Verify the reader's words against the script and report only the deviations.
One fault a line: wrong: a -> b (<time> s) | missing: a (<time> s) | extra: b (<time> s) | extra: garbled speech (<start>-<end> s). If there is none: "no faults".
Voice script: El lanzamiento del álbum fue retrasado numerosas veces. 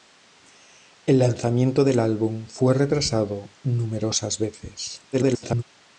extra: garbled speech (5.1-5.6 s)